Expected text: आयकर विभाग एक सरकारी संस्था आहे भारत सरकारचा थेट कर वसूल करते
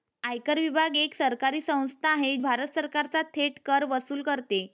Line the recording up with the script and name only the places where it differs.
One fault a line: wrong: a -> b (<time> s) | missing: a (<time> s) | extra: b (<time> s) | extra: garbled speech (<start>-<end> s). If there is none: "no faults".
no faults